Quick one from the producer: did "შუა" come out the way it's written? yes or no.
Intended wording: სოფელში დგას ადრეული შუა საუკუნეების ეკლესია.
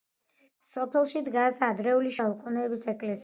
no